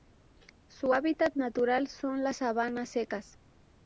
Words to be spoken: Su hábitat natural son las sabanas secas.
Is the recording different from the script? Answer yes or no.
no